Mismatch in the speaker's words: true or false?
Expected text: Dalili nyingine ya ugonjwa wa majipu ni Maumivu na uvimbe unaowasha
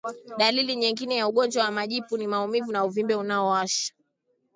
false